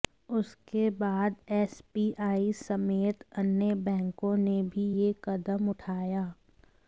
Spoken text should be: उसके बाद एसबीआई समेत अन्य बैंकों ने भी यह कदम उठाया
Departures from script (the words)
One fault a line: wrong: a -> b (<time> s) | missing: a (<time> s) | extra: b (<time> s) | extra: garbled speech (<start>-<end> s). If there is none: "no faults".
no faults